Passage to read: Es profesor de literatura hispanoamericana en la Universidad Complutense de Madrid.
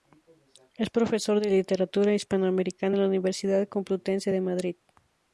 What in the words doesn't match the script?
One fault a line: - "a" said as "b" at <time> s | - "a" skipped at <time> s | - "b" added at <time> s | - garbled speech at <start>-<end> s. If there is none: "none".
none